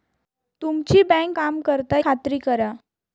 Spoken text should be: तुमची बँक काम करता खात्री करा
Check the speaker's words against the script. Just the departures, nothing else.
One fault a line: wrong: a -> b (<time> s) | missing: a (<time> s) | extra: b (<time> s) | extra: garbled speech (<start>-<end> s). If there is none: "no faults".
no faults